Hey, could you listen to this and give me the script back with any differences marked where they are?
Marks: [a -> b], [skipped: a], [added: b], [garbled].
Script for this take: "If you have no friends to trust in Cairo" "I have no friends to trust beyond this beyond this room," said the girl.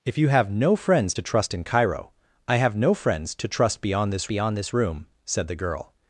"If you have no friends to trust in Cairo" "I have no friends to trust beyond this beyond this room," said the girl.